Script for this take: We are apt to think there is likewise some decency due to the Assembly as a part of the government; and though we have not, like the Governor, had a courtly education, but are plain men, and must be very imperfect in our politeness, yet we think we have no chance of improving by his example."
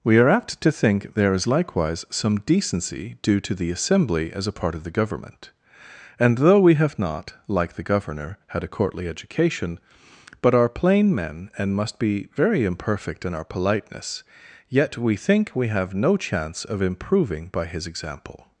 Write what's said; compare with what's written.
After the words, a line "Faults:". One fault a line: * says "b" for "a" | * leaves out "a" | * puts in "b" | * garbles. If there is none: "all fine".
We are apt to think there is likewise some decency due to the Assembly as a part of the government; and though we have not, like the Governor, had a courtly education, but are plain men, and must be very imperfect in our politeness, yet we think we have no chance of improving by his example."
Faults:
all fine